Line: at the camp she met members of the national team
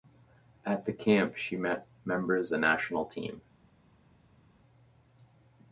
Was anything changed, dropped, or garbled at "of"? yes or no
yes